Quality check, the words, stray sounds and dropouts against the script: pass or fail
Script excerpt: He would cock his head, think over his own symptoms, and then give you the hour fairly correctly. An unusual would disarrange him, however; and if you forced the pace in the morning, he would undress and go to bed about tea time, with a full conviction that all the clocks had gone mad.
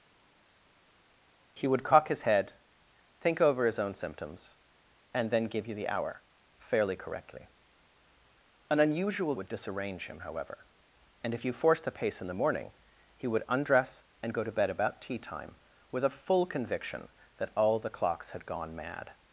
pass